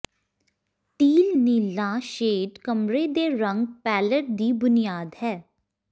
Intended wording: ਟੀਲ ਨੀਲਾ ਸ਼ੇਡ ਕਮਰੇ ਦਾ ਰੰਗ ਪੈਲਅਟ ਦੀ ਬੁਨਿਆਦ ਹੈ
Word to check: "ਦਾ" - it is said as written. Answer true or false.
false